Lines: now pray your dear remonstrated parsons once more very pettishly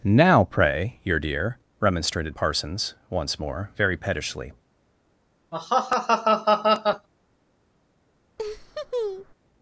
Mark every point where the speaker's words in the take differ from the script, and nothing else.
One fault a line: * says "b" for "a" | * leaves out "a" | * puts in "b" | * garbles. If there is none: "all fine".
all fine